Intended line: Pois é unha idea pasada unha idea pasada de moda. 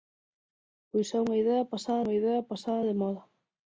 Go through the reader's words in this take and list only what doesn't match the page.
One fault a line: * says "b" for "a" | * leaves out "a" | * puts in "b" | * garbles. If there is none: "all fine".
all fine